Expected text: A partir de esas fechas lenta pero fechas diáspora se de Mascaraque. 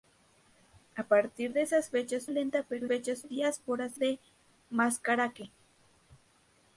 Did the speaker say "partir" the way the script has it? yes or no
yes